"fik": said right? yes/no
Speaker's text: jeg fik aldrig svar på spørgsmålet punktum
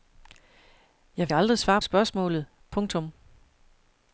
no